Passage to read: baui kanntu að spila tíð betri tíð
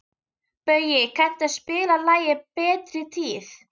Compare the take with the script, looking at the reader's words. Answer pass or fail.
fail